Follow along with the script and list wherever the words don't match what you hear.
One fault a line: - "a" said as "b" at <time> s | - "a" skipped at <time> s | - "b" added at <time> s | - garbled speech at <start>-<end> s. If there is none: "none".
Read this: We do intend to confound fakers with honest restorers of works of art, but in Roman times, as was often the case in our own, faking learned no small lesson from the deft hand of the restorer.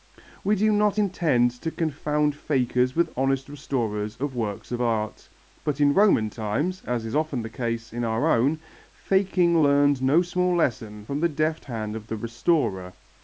- "not" added at 0.7 s
- "was" said as "is" at 7.0 s